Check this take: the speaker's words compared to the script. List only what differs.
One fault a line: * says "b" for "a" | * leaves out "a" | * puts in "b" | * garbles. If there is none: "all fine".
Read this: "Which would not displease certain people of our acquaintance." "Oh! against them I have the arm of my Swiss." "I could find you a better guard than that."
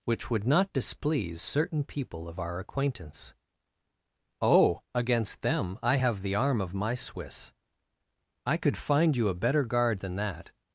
all fine